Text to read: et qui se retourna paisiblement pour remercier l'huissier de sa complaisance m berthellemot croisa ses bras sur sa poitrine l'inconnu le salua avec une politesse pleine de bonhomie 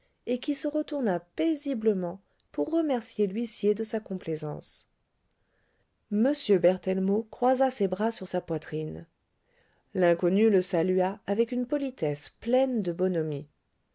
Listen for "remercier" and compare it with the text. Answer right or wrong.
right